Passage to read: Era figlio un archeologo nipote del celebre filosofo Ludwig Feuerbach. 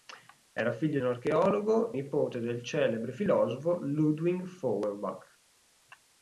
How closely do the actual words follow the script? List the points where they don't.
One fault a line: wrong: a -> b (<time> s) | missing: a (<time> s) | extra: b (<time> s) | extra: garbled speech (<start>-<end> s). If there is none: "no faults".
no faults